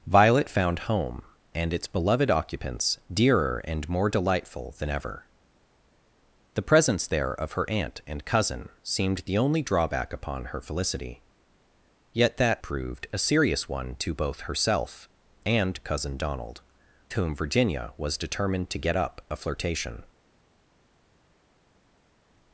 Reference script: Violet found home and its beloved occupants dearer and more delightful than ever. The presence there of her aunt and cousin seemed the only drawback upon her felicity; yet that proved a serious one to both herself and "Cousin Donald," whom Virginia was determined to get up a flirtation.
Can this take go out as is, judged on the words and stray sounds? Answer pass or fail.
pass